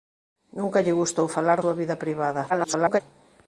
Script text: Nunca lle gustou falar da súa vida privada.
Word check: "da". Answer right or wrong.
wrong